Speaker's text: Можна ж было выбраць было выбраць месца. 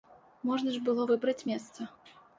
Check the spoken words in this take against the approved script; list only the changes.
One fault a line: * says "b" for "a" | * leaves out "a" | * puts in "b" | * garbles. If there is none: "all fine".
* leaves out "было выбраць"